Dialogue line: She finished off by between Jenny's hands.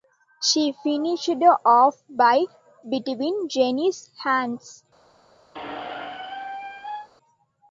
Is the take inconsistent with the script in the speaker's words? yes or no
no